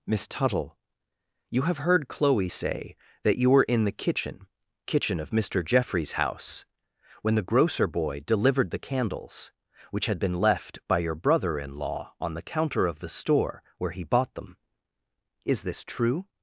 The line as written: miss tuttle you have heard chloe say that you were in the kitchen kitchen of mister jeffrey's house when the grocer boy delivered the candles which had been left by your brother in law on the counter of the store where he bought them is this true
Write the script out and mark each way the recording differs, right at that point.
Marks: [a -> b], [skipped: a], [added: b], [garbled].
miss tuttle you have heard chloe say that you were in the kitchen kitchen of mister jeffrey's house when the grocer boy delivered the candles which had been left by your brother in law on the counter of the store where he bought them is this true